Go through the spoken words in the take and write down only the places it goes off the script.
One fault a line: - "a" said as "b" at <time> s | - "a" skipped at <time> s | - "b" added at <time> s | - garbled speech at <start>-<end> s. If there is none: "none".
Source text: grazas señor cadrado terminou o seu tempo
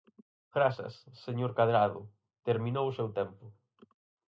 none